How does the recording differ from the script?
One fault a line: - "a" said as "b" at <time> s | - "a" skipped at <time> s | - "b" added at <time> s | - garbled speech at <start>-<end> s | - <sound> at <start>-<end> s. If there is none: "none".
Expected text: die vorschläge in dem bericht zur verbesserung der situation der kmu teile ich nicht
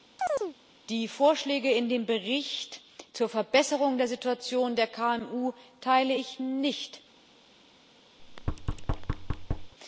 - chirp at 0.2-0.6 s
- thud at 8.2-9.7 s